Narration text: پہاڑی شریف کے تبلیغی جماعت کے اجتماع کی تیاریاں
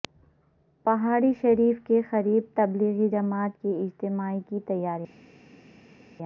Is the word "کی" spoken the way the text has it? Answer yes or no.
yes